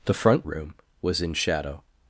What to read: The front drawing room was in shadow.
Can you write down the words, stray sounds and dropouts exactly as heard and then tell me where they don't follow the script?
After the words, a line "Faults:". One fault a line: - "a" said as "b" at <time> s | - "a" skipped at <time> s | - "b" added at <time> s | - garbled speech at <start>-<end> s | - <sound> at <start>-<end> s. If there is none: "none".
The front room was in shadow.
Faults:
- "drawing" skipped at 0.4 s